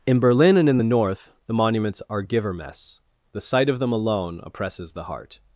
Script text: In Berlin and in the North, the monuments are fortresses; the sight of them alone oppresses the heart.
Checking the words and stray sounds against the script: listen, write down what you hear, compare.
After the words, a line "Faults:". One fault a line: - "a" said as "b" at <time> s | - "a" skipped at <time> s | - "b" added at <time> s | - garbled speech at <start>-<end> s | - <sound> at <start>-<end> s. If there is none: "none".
In Berlin and in the North, the monuments are givermess; the sight of them alone oppresses the heart.
Faults:
- "fortresses" said as "givermess" at 2.2 s